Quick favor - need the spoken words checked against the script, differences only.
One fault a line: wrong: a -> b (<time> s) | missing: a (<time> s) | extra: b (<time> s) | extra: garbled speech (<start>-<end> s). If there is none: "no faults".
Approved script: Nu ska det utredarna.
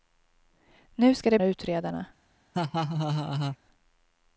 no faults